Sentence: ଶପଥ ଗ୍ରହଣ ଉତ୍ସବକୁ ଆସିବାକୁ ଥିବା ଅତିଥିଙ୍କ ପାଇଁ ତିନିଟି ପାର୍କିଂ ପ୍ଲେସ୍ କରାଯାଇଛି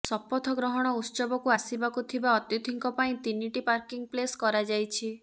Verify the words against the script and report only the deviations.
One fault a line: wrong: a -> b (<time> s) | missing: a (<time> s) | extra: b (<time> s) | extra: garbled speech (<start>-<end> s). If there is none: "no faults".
no faults